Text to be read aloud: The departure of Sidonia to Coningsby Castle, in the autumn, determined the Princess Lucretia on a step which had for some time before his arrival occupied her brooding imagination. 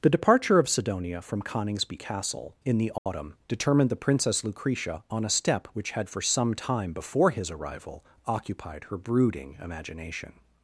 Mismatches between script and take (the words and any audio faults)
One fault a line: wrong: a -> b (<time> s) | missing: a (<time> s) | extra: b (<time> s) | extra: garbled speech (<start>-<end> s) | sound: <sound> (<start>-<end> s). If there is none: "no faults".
wrong: to -> from (1.2 s)
sound: dropout (3.0-3.1 s)